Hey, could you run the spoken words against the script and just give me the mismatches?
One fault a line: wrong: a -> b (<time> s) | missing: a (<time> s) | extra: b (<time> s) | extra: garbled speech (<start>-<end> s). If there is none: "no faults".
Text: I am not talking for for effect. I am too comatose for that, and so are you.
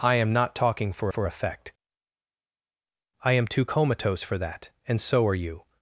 no faults